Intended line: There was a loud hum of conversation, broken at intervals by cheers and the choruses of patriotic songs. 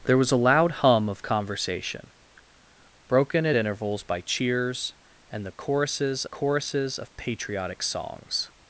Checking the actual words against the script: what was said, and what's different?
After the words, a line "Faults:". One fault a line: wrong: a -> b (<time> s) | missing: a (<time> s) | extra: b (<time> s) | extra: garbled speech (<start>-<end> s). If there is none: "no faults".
There was a loud hum of conversation, broken at intervals by cheers and the choruses choruses of patriotic songs.
Faults:
extra: choruses (6.2 s)